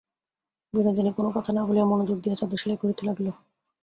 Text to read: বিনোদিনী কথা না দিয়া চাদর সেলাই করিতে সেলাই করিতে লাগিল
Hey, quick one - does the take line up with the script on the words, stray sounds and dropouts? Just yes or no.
no